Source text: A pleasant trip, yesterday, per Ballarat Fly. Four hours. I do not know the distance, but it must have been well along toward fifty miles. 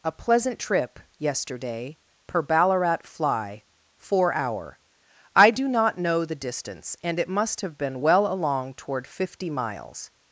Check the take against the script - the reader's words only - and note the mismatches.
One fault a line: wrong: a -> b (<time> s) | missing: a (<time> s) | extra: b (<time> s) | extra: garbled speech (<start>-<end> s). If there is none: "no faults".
wrong: hours -> hour (4.3 s)
wrong: but -> and (7.0 s)